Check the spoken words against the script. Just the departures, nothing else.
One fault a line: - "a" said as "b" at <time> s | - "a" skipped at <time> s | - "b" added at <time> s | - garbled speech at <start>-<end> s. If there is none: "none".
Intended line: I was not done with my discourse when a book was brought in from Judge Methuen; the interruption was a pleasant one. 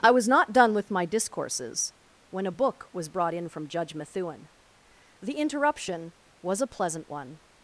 - "discourse" said as "discourses" at 1.1 s